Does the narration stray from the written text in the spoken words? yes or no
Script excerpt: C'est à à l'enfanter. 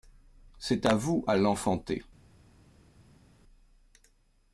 yes